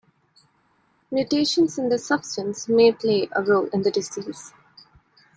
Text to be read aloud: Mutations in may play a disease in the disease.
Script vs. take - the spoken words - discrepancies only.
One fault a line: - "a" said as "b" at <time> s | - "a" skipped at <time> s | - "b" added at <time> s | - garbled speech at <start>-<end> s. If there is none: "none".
- "this substance" added at 1.9 s
- "disease" said as "role" at 3.4 s